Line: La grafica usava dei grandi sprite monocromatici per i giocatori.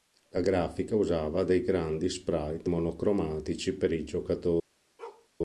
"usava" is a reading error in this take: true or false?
false